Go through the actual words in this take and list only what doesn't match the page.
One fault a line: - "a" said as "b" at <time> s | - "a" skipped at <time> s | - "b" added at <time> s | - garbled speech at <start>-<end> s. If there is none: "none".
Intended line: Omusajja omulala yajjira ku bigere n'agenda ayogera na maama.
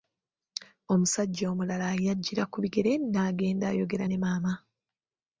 - "na" said as "ne" at 4.1 s